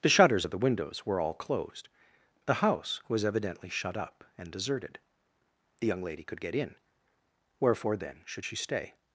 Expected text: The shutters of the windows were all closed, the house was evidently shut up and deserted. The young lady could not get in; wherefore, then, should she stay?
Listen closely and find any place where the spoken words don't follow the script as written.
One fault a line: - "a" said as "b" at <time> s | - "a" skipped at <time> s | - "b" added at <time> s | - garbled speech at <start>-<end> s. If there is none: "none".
- "not" skipped at 6.4 s